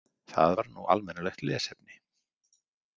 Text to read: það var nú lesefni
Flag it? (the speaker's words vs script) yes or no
yes